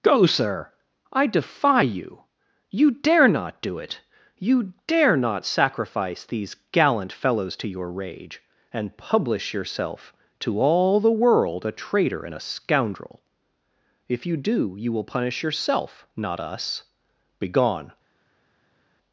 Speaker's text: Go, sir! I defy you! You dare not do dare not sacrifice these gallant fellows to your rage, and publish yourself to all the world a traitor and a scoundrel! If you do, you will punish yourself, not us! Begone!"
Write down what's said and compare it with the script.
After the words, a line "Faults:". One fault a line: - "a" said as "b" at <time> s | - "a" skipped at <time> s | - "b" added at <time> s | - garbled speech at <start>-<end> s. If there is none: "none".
Go, sir! I defy you! You dare not do it! You dare not sacrifice these gallant fellows to your rage, and publish yourself to all the world a traitor and a scoundrel! If you do, you will punish yourself, not us! Begone!"
Faults:
- "it You" added at 3.8 s